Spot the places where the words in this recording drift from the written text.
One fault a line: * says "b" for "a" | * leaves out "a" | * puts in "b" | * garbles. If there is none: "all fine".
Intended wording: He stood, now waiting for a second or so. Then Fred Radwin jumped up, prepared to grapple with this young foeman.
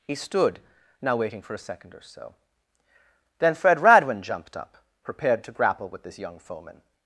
all fine